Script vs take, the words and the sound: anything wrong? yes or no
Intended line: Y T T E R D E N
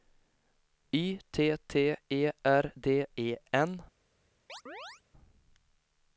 yes